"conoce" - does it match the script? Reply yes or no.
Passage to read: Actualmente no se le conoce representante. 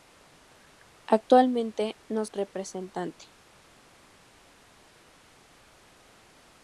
no